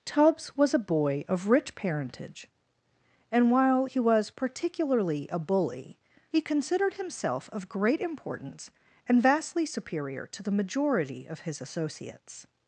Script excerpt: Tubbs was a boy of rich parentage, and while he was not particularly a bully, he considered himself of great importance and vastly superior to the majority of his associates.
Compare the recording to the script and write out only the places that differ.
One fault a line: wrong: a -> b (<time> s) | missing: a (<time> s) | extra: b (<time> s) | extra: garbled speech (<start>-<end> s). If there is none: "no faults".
missing: not (4.3 s)